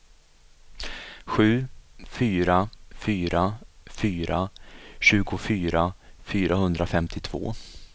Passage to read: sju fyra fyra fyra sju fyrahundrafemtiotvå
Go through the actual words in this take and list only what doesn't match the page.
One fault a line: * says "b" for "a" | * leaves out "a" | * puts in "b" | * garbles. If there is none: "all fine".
* says "tjugofyra" for "sju"